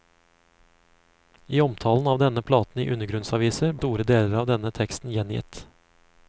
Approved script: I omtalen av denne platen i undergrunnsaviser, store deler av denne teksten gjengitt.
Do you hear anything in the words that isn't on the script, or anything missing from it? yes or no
no